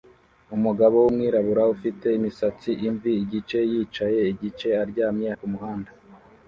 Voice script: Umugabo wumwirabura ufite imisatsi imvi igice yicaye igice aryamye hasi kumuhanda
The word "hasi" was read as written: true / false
false